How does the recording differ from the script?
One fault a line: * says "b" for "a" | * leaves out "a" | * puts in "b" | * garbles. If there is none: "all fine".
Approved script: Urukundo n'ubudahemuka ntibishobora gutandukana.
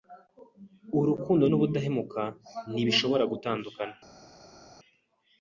all fine